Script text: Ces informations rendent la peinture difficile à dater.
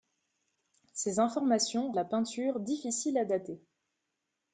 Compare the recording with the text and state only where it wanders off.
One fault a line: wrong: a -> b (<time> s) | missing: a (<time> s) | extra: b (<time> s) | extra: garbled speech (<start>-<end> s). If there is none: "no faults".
missing: rendent (1.9 s)